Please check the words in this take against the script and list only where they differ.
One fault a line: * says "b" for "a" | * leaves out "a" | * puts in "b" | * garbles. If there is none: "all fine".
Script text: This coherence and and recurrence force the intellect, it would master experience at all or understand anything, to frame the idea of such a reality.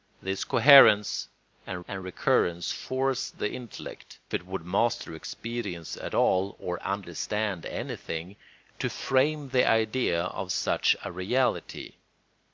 all fine